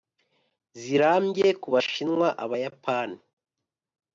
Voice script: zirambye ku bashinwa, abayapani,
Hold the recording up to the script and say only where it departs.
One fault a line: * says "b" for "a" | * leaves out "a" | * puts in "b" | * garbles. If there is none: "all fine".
all fine